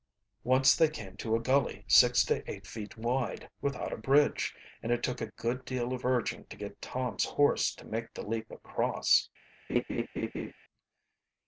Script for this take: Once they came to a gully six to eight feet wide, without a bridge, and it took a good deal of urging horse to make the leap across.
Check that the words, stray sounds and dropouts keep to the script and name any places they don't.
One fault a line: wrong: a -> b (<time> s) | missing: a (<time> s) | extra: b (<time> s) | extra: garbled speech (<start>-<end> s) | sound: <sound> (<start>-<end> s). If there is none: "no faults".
extra: to get Tom's (6.5 s)
sound: laugh (9.7-10.5 s)